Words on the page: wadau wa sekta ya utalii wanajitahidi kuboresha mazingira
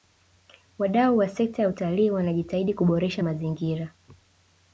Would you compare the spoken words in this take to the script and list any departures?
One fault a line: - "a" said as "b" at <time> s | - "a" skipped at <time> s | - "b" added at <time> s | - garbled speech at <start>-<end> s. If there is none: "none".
none